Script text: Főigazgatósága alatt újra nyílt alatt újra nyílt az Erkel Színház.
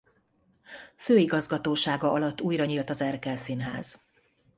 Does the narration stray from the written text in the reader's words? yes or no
yes